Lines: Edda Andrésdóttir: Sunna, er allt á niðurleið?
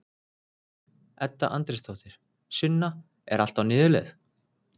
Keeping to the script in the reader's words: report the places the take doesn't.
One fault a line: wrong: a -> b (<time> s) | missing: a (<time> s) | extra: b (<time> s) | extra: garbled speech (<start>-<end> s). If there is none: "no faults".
no faults